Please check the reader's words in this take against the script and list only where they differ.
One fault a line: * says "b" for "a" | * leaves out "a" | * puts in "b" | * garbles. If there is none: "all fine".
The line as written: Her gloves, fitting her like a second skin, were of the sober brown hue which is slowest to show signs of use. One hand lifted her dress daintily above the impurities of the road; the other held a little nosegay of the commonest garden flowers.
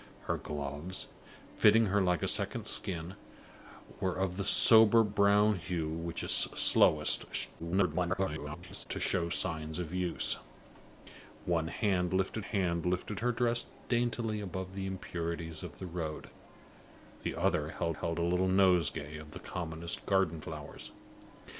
* garbles
* puts in "hand lifted"
* puts in "held"